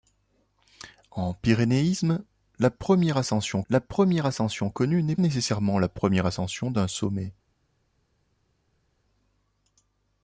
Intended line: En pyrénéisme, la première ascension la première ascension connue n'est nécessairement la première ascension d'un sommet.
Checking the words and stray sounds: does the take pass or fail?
pass